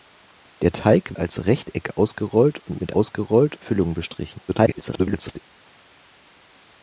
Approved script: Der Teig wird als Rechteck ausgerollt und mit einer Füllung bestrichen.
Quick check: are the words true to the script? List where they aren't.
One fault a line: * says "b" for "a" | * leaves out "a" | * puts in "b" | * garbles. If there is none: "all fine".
* leaves out "wird"
* says "ausgerollt" for "einer"
* garbles